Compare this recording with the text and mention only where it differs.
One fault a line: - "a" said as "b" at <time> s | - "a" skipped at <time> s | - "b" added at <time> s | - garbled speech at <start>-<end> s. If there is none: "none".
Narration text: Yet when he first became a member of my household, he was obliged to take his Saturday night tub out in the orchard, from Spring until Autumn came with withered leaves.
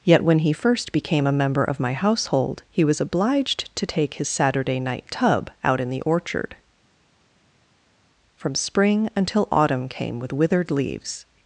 none